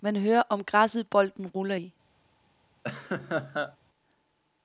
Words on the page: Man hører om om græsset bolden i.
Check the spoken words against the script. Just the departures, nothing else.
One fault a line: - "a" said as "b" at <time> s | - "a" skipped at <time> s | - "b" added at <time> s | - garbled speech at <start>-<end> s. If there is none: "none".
- "om" skipped at 0.6 s
- "ruller" added at 1.5 s